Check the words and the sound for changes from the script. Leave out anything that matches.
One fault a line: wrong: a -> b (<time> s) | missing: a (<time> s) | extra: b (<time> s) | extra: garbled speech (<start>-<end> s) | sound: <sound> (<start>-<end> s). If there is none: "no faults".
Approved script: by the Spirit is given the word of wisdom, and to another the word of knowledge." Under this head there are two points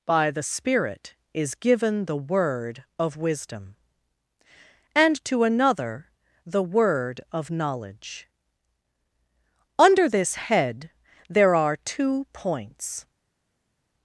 no faults